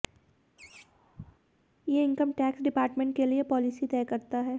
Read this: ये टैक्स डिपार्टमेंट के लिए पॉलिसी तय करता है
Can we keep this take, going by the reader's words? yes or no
no